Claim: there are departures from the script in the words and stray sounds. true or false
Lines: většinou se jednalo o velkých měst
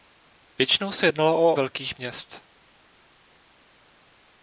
false